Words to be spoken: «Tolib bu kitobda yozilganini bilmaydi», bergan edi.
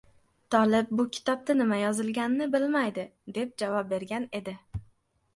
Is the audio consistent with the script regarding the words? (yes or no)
no